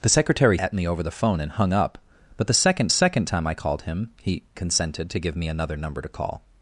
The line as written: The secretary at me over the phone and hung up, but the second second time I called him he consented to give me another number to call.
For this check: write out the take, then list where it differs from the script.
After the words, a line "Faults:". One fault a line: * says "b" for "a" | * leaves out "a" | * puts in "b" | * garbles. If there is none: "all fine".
The secretary at me over the phone and hung up, but the second second time I called him he consented to give me another number to call.
Faults:
all fine